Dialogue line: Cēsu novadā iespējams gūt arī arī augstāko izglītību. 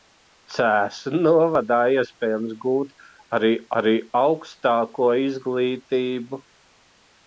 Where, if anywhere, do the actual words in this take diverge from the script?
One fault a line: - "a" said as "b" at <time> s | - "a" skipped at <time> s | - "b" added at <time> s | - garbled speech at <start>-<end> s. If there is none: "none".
none